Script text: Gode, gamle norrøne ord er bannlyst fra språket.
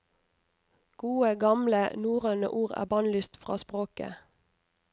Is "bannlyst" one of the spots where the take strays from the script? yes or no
no